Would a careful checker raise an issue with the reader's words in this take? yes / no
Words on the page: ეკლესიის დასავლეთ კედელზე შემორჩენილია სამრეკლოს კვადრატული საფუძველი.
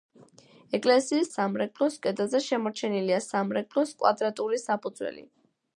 yes